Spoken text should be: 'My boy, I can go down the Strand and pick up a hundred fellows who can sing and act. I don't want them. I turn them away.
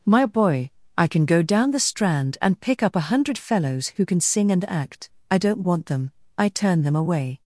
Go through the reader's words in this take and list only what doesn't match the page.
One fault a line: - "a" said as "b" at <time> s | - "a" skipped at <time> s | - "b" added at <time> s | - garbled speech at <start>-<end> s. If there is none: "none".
none